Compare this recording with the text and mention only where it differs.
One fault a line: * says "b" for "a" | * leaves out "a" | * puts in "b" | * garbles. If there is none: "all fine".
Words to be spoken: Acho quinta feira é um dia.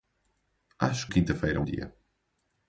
all fine